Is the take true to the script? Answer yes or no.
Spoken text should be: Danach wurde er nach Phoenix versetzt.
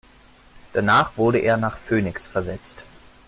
yes